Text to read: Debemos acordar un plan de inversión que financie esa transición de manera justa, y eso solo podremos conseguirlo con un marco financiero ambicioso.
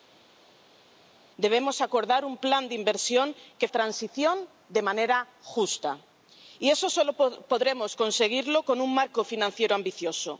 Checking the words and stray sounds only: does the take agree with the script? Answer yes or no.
no